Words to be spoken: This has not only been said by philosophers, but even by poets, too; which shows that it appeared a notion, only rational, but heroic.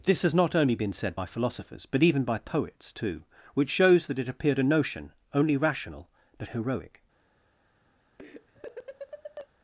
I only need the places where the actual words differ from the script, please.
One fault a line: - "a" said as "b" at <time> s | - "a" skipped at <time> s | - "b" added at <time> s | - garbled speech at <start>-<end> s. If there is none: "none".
none